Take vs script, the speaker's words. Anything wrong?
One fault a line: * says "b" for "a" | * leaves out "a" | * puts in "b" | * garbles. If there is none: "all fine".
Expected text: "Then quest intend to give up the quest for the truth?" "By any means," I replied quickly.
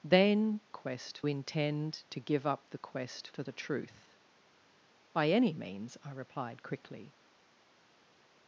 all fine